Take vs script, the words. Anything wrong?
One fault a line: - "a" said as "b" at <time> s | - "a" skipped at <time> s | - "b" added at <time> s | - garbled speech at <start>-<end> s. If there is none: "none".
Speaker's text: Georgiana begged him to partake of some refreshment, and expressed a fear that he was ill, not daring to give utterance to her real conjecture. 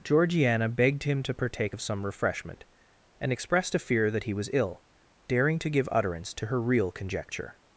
- "not" skipped at 4.8 s